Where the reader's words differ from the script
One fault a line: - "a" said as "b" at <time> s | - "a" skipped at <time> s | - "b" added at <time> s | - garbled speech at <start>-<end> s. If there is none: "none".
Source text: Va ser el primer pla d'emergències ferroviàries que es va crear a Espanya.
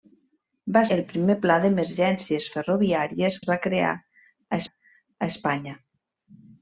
- "ser" skipped at 0.8 s
- "que" skipped at 3.4 s
- "a" added at 4.6 s